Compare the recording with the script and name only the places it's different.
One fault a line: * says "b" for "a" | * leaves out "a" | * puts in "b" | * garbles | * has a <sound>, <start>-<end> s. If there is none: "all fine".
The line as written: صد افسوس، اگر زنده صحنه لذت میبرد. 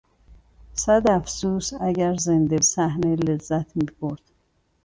all fine